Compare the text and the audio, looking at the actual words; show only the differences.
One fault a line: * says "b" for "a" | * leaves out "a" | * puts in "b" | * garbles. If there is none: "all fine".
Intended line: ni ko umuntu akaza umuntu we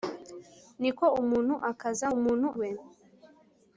all fine